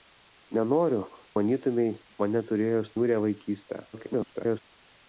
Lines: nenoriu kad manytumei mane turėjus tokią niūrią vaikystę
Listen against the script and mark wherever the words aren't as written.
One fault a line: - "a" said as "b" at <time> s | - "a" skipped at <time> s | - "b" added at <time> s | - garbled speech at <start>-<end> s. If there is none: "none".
- "kad" skipped at 1.0 s
- "tokią" skipped at 3.0 s
- garbled speech at 3.9-4.6 s